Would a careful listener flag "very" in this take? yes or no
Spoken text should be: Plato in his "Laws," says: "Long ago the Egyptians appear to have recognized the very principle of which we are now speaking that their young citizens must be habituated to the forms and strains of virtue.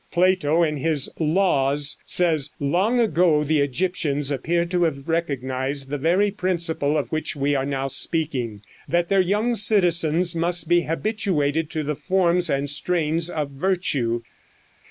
no